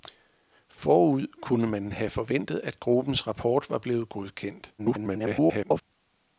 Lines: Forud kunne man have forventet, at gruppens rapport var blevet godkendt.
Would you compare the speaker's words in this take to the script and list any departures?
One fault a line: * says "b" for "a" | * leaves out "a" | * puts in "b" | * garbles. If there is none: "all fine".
* garbles